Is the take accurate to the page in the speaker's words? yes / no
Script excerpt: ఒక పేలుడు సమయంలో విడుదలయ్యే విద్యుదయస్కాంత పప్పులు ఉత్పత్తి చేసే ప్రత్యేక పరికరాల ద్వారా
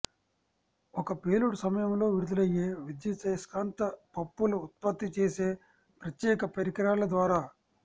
yes